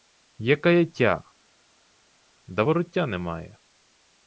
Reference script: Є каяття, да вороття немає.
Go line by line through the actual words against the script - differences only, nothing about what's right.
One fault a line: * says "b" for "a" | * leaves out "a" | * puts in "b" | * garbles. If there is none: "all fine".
all fine